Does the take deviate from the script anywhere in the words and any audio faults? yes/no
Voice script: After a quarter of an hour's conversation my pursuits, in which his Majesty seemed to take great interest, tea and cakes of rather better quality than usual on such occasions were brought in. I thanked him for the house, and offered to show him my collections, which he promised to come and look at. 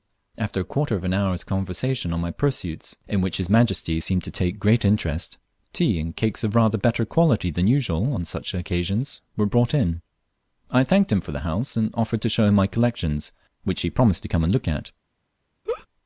yes